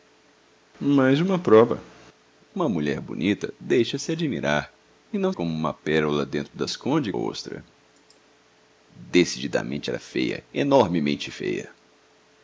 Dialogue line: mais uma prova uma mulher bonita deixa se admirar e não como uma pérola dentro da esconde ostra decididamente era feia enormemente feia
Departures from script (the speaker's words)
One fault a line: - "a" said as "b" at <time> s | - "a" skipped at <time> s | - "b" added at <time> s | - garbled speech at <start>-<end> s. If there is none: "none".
none